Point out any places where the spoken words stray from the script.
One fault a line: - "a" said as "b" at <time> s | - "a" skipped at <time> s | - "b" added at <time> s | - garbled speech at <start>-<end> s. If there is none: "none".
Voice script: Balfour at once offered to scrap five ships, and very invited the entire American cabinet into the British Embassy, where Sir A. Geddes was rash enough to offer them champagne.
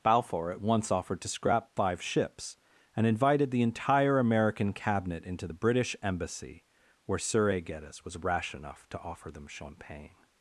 - "very" skipped at 3.1 s